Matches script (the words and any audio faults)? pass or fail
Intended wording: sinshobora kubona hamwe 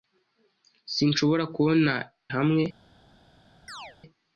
fail